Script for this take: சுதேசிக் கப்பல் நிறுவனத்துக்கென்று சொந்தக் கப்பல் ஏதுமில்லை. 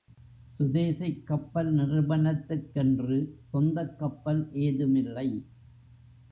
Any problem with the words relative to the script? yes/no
no